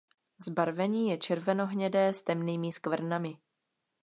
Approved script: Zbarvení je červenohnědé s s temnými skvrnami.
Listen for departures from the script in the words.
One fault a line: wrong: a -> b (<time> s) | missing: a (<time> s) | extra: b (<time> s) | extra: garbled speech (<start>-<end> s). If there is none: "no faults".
missing: s (2.2 s)